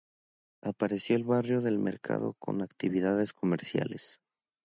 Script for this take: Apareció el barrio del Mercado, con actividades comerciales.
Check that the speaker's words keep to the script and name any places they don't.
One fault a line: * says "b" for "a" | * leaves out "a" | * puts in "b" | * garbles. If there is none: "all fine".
all fine